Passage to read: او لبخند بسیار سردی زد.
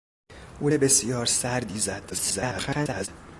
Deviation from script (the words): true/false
true